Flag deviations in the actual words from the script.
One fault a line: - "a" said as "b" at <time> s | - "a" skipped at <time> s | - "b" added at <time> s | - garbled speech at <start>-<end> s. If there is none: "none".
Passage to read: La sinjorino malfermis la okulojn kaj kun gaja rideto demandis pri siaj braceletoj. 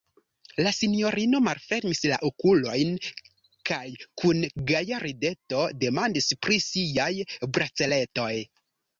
none